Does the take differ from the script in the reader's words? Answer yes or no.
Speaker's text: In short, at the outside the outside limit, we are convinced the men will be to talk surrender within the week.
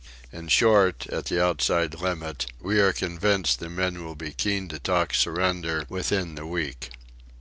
yes